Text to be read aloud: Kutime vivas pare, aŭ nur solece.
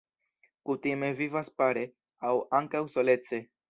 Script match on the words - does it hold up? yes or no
no